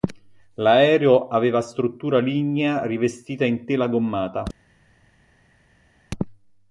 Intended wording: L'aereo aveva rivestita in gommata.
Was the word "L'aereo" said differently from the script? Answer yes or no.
no